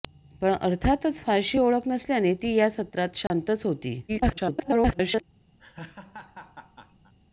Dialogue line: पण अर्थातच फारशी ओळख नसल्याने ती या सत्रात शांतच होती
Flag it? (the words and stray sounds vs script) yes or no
yes